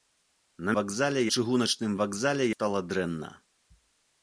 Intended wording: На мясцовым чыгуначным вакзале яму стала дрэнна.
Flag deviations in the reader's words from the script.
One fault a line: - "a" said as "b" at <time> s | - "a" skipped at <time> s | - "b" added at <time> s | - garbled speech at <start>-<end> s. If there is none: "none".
- "мясцовым" said as "вакзале" at 0.8 s
- "яму" skipped at 2.5 s